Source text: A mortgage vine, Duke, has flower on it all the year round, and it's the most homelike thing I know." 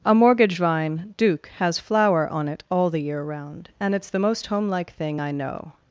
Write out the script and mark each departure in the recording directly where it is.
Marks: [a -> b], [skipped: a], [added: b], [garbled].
A mortgage vine, Duke, has flower on it all the year round, and it's the most homelike thing I know."